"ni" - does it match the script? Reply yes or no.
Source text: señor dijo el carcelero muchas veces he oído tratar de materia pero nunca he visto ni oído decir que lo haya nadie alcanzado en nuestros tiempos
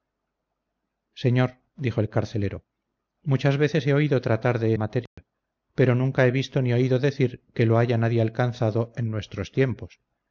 yes